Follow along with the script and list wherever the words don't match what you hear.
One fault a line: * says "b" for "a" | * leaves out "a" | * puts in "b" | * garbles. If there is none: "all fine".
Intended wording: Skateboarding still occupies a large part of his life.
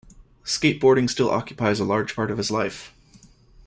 all fine